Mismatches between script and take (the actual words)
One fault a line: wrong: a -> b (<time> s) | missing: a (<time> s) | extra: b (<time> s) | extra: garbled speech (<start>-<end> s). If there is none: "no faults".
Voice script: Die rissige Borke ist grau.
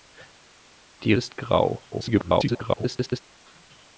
missing: rissige Borke (1.1 s)
extra: garbled speech (1.9-3.2 s)